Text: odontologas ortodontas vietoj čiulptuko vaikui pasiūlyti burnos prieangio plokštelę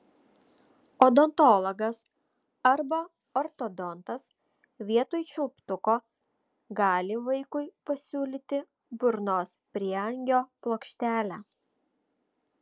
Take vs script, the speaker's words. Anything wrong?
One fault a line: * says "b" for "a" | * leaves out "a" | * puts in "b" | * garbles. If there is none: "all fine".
* puts in "arba"
* puts in "gali"